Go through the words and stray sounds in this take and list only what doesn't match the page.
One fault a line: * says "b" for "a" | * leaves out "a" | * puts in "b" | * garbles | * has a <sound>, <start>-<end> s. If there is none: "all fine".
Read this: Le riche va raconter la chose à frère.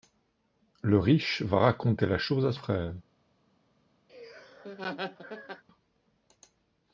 * has a laugh, 4.1-5.6 s